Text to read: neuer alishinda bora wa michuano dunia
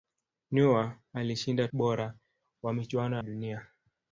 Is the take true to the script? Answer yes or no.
yes